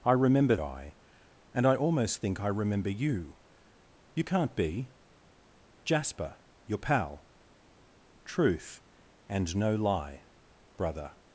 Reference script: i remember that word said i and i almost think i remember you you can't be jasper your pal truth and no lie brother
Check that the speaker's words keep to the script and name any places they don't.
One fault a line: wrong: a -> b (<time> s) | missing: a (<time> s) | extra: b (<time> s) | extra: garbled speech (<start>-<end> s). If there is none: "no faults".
missing: that word said (0.6 s)